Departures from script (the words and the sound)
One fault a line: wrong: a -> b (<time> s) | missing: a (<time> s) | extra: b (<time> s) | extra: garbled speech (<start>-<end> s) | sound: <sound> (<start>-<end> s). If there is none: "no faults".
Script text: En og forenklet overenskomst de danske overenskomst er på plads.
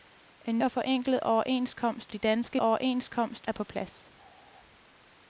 no faults